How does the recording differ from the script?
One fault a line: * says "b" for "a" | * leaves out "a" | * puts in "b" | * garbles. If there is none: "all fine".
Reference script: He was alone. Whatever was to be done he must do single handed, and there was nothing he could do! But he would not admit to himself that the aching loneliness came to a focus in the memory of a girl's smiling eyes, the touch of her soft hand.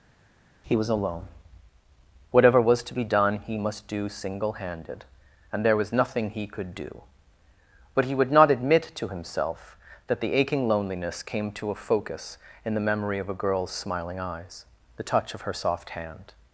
all fine